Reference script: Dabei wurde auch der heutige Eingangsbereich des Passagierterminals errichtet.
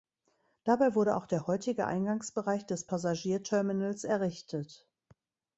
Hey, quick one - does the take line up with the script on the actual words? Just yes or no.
yes